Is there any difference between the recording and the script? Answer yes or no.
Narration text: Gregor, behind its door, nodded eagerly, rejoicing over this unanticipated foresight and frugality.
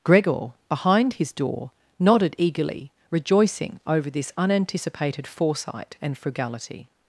yes